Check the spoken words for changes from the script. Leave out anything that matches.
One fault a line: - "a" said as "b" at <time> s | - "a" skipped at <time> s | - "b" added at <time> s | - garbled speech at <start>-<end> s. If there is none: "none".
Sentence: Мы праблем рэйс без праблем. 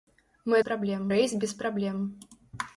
none